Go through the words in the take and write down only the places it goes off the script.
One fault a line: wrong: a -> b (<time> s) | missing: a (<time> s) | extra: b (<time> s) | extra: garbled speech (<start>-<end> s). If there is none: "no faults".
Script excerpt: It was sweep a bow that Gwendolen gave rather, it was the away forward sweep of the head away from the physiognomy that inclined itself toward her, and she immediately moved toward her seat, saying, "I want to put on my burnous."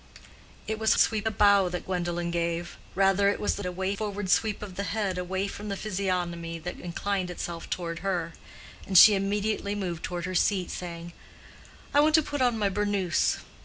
no faults